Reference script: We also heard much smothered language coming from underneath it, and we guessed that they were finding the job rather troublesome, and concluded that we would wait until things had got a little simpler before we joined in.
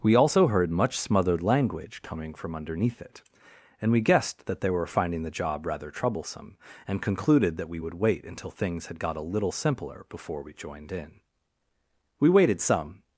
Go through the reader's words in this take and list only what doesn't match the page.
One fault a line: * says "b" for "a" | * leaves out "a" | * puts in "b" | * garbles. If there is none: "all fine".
* puts in "We waited some"